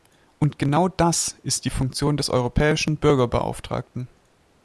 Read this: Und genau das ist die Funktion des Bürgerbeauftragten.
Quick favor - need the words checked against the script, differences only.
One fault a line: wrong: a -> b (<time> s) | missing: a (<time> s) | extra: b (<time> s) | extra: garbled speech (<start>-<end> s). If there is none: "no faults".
extra: europäischen (2.3 s)